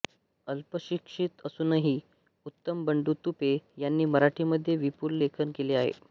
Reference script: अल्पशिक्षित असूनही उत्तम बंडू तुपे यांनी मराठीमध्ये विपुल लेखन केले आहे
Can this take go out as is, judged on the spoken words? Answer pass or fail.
pass